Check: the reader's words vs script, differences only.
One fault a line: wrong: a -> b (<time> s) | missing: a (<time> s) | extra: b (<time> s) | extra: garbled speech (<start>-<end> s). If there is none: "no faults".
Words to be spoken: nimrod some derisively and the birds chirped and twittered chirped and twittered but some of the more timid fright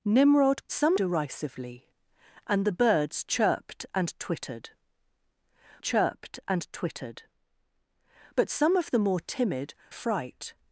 no faults